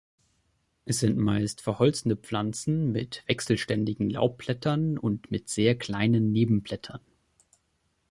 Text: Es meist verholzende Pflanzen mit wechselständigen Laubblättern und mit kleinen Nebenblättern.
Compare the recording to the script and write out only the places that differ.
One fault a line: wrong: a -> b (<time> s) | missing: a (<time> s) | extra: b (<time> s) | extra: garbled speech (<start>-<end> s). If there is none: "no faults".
extra: sind (1.0 s)
extra: sehr (5.5 s)